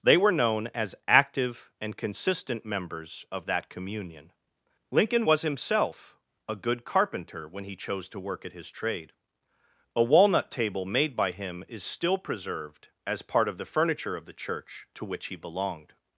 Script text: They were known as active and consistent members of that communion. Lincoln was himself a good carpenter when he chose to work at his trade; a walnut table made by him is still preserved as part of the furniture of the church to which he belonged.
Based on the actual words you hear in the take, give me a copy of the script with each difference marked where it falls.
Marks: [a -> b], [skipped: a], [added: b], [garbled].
They were known as active and consistent members of that communion. Lincoln was himself a good carpenter when he chose to work at his trade; a walnut table made by him is still preserved as part of the furniture of the church to which he belonged.